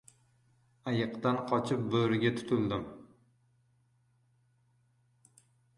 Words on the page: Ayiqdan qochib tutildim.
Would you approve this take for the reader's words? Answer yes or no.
no